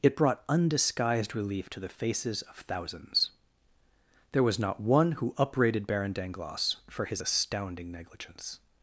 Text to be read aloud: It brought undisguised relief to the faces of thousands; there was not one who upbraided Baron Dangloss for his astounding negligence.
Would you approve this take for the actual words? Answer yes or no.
yes